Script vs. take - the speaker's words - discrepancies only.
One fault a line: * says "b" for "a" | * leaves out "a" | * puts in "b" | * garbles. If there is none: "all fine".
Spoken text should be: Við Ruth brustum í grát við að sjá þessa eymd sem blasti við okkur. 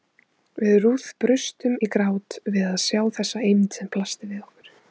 all fine